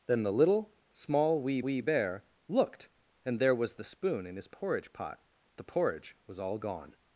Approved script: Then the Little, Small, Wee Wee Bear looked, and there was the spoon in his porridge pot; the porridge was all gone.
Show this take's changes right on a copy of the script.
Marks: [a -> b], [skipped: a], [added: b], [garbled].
Then the Little, Small, Wee Wee Bear looked, and there was the spoon in his porridge pot; the porridge was all gone.